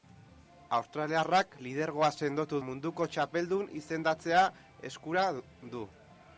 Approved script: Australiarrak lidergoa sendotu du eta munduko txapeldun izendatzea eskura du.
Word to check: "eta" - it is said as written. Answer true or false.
false